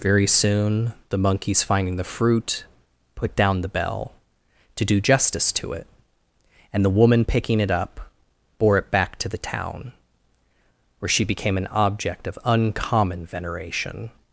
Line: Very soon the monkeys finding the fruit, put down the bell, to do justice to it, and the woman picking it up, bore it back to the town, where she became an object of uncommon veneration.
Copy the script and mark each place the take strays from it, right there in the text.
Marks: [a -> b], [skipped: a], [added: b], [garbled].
Very soon the monkeys finding the fruit, put down the bell, to do justice to it, and the woman picking it up, bore it back to the town, where she became an object of uncommon veneration.